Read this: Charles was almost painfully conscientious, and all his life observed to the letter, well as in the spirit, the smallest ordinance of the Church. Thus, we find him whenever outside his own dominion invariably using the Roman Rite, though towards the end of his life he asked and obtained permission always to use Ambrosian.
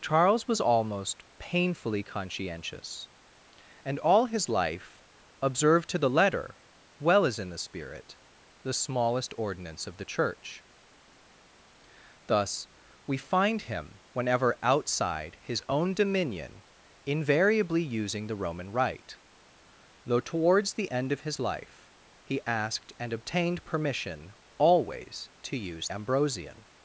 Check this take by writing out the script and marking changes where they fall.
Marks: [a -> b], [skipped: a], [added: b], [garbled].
Charles was almost painfully conscientious, and all his life observed to the letter, well as in the spirit, the smallest ordinance of the Church. Thus, we find him whenever outside his own dominion invariably using the Roman Rite, though towards the end of his life he asked and obtained permission always to use Ambrosian.